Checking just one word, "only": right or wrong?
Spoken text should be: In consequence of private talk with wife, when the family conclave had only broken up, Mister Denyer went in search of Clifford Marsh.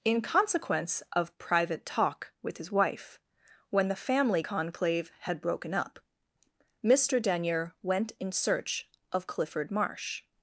wrong